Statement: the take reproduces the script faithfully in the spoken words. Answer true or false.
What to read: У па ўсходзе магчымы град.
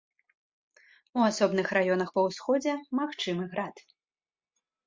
false